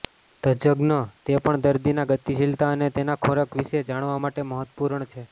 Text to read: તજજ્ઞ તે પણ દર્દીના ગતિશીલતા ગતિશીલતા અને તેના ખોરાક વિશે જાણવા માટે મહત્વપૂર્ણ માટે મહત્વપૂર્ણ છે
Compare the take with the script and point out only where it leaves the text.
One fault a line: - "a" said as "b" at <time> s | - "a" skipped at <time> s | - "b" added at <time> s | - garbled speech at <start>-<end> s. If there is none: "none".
- "ગતિશીલતા" skipped at 2.7 s
- "માટે મહત્વપૂર્ણ" skipped at 5.1 s